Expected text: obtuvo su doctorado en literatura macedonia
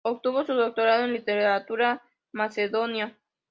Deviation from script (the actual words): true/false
false